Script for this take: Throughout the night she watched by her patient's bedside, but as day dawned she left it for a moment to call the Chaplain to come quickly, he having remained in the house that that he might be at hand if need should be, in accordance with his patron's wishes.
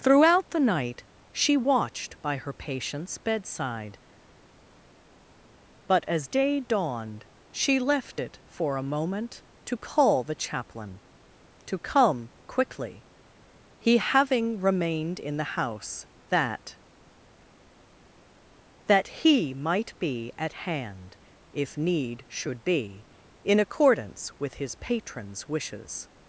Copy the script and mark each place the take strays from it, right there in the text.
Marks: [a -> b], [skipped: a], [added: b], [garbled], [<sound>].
Throughout the night she watched by her patient's bedside, but as day dawned she left it for a moment to call the Chaplain to come quickly, he having remained in the house that that he might be at hand if need should be, in accordance with his patron's wishes.